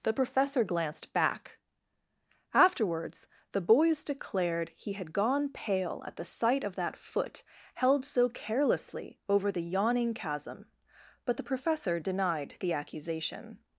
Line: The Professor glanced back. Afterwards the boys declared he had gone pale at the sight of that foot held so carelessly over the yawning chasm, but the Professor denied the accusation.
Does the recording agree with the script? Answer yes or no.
yes